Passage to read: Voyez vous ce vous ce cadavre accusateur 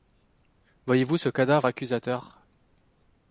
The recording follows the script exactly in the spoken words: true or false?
false